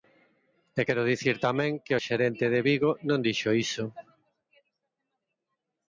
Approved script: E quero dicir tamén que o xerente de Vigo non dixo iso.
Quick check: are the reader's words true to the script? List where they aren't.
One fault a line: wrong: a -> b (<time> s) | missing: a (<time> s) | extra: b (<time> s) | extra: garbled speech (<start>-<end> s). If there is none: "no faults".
no faults